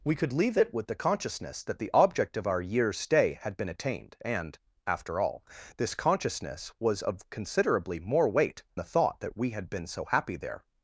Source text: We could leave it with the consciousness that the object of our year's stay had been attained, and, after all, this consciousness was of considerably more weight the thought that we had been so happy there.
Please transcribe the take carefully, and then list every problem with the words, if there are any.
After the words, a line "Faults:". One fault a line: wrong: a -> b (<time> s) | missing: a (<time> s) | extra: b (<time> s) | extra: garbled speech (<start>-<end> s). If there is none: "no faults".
We could leave it with the consciousness that the object of our year's stay had been attained, and, after all, this consciousness was of considerably more weight the thought that we had been so happy there.
Faults:
no faults